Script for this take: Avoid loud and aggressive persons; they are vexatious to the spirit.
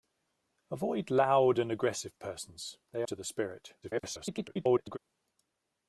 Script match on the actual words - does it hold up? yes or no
no